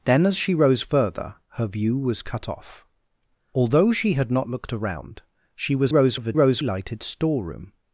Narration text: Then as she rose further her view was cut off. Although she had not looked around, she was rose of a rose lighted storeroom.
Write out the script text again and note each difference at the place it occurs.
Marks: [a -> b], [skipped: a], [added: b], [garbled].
Then as she rose further her view was cut off. Although she had not looked around, she was rose of a rose lighted storeroom.